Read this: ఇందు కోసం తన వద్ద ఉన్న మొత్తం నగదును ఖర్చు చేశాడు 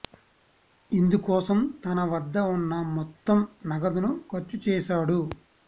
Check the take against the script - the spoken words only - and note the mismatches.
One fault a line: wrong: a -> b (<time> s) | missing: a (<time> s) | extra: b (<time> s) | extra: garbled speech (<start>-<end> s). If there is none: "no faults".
no faults